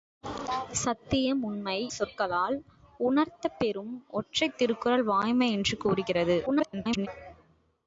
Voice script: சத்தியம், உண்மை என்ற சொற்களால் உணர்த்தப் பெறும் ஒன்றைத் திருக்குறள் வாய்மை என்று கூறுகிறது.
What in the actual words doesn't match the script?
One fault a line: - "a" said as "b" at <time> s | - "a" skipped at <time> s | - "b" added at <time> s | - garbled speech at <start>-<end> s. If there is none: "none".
- "என்ற" skipped at 1.7 s
- garbled speech at 6.5-7.1 s